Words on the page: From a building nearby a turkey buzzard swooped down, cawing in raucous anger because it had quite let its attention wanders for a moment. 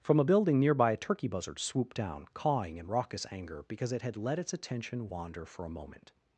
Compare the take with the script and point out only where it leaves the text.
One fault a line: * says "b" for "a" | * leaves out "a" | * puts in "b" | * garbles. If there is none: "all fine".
* leaves out "quite"
* says "wander" for "wanders"